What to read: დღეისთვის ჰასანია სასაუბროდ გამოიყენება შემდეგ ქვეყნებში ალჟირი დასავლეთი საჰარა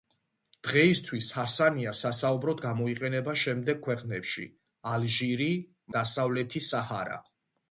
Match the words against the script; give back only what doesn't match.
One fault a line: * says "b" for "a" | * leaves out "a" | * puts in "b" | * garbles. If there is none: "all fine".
all fine